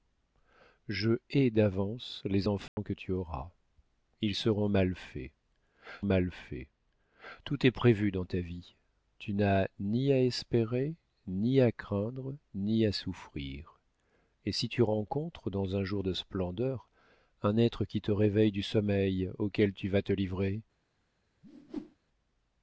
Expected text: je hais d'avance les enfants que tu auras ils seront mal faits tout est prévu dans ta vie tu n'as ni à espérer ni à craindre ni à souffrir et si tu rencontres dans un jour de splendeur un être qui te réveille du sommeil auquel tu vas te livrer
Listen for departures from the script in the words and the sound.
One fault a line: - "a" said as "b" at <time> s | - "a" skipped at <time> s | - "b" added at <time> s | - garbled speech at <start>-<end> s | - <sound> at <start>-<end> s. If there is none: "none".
- dropout at 2.7-2.8 s
- "mal faits" added at 6.0 s
- whoosh at 21.4-22.0 s